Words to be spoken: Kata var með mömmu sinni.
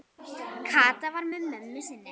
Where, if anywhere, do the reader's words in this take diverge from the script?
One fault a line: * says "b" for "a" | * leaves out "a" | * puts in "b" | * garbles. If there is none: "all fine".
all fine